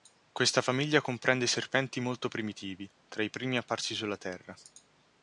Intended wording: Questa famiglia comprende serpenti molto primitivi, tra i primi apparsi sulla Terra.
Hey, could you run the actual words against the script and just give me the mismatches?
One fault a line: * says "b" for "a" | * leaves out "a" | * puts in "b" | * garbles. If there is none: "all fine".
all fine